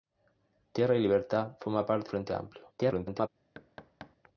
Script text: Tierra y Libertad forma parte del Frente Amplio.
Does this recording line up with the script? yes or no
no